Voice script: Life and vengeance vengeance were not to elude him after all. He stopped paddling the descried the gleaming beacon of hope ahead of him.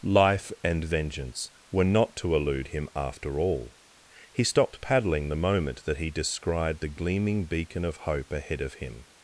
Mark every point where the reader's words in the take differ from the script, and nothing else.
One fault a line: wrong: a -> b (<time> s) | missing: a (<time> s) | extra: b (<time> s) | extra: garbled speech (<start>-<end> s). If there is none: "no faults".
missing: vengeance (1.5 s)
extra: moment that he (5.4 s)